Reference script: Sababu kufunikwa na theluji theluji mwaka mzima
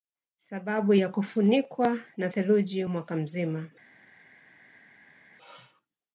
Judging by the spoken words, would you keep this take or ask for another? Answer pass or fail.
fail